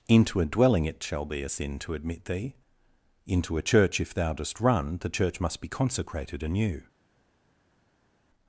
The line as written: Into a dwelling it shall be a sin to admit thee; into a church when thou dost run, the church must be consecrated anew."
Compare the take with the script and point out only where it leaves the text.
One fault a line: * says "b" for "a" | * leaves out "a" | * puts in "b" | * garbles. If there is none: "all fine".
* says "if" for "when"